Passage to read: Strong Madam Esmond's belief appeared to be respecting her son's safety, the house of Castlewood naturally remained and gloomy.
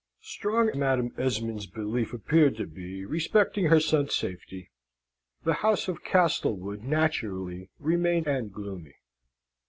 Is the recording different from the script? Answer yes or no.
no